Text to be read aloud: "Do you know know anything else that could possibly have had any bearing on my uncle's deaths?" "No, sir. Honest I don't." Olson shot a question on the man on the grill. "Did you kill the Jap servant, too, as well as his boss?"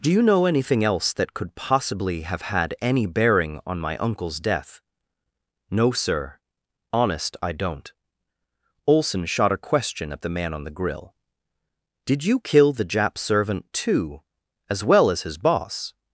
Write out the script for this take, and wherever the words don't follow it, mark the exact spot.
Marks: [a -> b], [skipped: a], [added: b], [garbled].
"Do you know [skipped: know] anything else that could possibly have had any bearing on my uncle's [deaths?" -> death] "No, sir. Honest I don't." Olson shot a question [on -> at] the man on the grill. "Did you kill the Jap servant, too, as well as his boss?"